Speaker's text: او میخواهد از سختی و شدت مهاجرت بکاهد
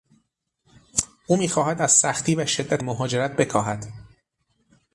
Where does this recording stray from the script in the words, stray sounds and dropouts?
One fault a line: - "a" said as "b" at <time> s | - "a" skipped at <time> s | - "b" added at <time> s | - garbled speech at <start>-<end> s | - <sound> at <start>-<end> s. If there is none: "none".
none